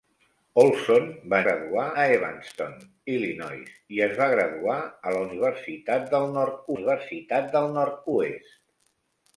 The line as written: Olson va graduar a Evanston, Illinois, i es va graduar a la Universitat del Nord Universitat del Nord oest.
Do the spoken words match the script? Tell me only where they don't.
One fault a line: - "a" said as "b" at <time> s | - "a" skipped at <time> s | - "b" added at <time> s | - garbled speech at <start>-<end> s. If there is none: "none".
none